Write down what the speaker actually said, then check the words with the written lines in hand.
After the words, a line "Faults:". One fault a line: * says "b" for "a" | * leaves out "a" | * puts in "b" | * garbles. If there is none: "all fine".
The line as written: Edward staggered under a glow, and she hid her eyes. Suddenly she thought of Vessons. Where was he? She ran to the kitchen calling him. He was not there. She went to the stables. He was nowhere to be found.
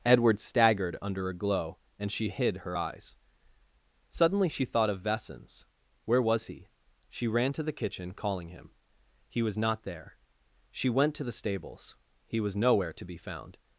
Edward staggered under a glow, and she hid her eyes. Suddenly she thought of Vessons. Where was he? She ran to the kitchen calling him. He was not there. She went to the stables. He was nowhere to be found.
Faults:
all fine